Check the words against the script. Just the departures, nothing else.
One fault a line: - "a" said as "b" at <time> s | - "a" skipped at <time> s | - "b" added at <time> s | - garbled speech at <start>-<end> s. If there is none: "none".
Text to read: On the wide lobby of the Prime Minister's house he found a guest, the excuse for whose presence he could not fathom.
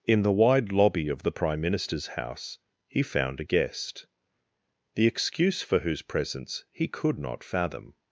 - "On" said as "In" at 0.1 s